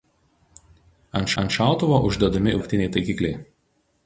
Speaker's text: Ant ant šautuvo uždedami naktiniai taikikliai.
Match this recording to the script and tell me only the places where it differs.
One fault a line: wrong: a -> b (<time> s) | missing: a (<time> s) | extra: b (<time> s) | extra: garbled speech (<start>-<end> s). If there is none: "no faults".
no faults